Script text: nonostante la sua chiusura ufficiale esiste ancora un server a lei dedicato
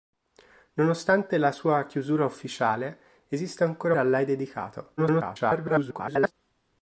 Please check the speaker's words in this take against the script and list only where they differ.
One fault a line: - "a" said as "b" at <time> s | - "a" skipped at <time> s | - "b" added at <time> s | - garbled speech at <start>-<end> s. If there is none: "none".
- "un server" skipped at 3.9 s
- garbled speech at 5.0-6.3 s